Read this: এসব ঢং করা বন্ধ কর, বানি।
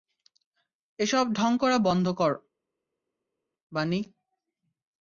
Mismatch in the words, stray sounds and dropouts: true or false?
false